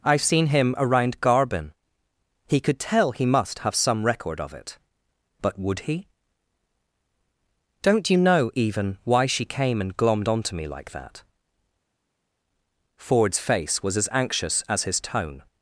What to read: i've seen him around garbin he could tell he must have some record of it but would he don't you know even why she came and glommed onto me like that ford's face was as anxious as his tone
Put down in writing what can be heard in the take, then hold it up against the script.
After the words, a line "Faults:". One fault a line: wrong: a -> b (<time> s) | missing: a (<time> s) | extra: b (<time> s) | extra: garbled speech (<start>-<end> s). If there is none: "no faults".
i've seen him around garbin he could tell he must have some record of it but would he don't you know even why she came and glommed onto me like that ford's face was as anxious as his tone
Faults:
no faults